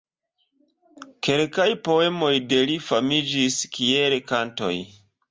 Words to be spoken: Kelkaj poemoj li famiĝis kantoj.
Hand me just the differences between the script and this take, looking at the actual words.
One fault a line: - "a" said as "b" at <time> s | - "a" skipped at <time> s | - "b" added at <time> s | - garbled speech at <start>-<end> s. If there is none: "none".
- "de" added at 2.5 s
- "kiel" added at 3.8 s